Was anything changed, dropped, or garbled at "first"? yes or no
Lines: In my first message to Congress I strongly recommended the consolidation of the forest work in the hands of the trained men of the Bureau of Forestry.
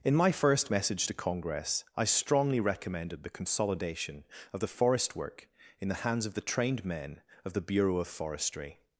no